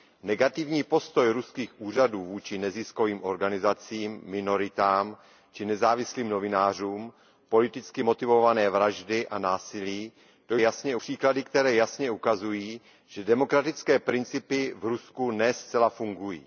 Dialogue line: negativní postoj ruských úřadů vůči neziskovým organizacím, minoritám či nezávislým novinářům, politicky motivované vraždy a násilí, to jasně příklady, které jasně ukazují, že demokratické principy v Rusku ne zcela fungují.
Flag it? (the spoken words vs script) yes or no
no